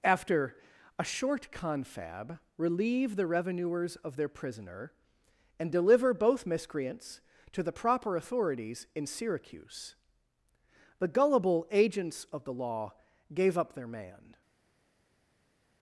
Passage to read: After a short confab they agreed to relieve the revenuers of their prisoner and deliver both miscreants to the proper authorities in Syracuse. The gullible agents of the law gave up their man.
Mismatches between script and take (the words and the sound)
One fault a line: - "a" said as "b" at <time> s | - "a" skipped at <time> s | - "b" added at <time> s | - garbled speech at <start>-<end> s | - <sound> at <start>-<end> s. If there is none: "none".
- "they agreed to" skipped at 2.4 s